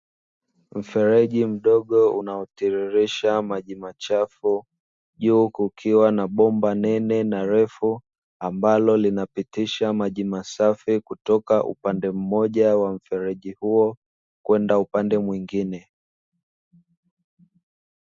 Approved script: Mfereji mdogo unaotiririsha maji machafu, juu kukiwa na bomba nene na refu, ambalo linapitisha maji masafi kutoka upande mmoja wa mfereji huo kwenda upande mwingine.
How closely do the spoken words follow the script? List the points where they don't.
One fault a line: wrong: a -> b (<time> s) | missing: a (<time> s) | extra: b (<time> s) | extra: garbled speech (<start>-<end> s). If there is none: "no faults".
no faults